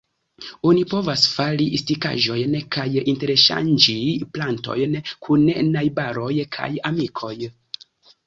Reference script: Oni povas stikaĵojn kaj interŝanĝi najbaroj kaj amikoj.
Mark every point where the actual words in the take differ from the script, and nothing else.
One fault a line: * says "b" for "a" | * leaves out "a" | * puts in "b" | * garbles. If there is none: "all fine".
* puts in "fari"
* puts in "plantojn kun"